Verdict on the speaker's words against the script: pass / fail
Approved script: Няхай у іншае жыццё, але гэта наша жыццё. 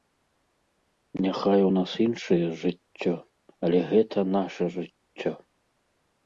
fail